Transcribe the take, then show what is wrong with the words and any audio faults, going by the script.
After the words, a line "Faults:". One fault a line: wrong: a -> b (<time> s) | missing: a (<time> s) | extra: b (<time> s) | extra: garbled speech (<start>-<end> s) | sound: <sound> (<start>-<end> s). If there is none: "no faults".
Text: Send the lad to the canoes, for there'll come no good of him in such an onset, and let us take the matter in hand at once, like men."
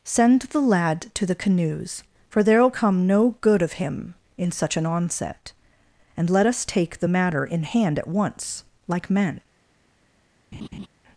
Send the lad to the canoes, for there'll come no good of him in such an onset, and let us take the matter in hand at once, like men."
Faults:
sound: laugh (10.5-10.9 s)